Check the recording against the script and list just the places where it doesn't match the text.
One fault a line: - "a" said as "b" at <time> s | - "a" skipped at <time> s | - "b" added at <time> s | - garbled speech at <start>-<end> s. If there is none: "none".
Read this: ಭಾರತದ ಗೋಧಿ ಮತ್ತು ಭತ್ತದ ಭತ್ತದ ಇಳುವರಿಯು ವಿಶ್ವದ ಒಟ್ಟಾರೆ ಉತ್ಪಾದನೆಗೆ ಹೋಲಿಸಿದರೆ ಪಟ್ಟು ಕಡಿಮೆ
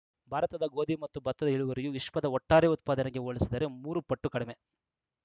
- "ಭತ್ತದ" skipped at 1.5 s
- "ಮೂರು" added at 3.8 s